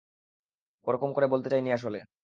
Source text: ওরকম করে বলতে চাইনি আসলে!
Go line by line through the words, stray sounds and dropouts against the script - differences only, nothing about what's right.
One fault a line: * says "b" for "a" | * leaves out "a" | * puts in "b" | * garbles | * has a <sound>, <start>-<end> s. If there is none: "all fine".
all fine